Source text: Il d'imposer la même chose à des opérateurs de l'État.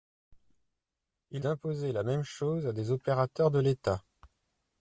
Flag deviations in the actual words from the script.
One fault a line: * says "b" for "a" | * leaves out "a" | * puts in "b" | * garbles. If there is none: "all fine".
all fine